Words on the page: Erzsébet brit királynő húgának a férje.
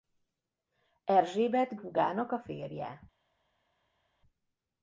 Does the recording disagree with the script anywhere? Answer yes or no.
yes